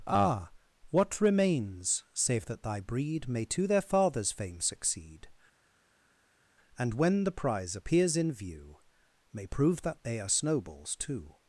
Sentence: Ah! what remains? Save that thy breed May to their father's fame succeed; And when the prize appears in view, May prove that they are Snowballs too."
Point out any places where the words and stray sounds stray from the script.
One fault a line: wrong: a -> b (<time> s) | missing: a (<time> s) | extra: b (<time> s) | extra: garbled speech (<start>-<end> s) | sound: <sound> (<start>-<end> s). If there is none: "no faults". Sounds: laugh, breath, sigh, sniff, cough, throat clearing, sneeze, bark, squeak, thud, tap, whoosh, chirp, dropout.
no faults